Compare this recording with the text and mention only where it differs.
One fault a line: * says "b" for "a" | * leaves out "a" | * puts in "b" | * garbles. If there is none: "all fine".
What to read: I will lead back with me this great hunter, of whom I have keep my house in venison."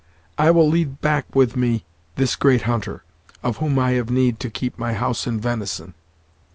* puts in "need to"